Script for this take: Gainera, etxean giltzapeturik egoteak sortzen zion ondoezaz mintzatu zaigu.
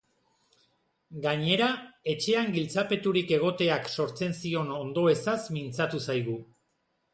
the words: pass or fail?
pass